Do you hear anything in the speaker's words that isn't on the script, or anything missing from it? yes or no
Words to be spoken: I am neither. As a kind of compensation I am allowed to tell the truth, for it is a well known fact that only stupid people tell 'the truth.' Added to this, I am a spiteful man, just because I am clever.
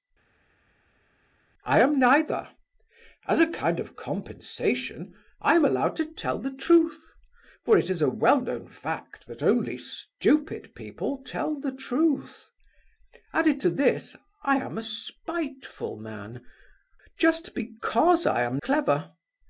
no